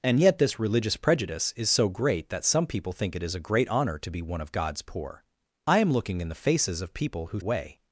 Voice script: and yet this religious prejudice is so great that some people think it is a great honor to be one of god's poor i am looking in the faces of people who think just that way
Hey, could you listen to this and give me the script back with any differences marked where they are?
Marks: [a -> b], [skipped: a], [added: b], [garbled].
and yet this religious prejudice is so great that some people think it is a great honor to be one of god's poor i am looking in the faces of people who [skipped: think just that] way